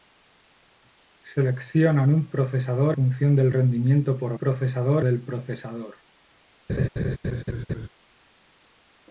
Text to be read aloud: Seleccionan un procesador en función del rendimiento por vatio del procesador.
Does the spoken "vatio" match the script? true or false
false